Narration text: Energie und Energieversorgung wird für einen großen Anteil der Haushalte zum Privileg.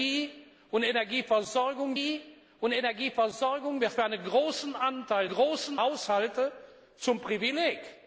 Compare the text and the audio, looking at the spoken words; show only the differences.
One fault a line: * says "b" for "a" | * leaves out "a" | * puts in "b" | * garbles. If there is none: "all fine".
* puts in "energie und Energieversorgung"
* says "großen" for "der"